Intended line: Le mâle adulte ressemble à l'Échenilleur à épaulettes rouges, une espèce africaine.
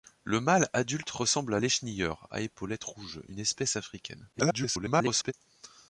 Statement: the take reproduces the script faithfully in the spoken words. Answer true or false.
false